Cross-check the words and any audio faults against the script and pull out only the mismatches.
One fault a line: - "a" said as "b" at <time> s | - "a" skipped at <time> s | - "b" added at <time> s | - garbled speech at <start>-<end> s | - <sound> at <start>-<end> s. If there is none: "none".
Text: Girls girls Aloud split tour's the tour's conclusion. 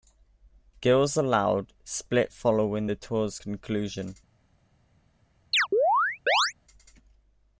- "girls" skipped at 1.1 s
- "tour's" said as "following" at 2.3 s
- chirp at 5.5-6.5 s